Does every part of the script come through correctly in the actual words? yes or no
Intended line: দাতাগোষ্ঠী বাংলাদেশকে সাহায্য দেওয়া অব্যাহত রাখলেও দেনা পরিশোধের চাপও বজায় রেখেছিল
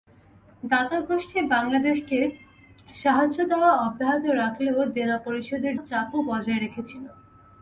yes